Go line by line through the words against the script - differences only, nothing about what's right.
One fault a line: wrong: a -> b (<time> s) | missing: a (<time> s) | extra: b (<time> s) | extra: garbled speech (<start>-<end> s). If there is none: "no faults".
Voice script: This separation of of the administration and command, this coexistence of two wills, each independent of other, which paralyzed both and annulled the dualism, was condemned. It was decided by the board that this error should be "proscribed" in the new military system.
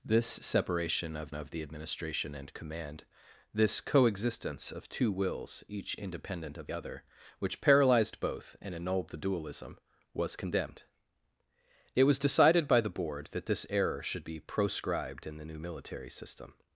no faults